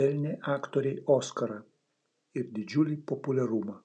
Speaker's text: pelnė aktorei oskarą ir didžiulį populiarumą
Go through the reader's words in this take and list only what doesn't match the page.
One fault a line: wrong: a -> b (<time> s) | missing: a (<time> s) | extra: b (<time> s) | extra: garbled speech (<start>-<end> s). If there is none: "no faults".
no faults